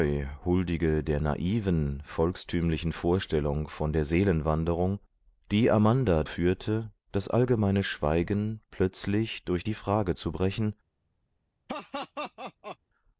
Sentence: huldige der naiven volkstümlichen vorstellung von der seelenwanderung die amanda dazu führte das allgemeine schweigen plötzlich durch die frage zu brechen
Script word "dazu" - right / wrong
wrong